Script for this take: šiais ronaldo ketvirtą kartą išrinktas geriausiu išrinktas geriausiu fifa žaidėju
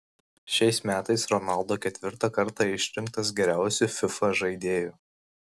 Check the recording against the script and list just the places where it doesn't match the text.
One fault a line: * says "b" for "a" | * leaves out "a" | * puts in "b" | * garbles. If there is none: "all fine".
* puts in "metais"
* leaves out "išrinktas geriausiu"